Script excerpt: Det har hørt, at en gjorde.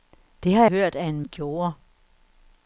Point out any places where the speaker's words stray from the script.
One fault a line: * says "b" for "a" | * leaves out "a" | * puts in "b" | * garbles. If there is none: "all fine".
all fine